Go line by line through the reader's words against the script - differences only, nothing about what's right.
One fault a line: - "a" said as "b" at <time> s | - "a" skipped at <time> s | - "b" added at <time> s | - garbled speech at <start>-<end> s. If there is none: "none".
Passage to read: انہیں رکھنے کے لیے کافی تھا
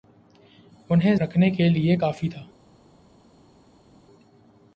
none